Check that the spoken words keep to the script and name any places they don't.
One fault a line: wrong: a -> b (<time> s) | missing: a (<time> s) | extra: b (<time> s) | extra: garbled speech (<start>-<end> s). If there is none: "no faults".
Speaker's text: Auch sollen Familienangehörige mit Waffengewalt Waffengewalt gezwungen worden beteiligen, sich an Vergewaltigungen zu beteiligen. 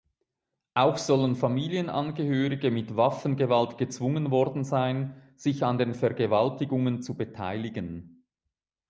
missing: Waffengewalt (3.8 s)
wrong: beteiligen -> sein (4.6 s)
extra: den (5.8 s)